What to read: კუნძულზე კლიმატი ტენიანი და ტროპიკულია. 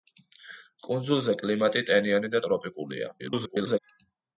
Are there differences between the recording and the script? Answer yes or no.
yes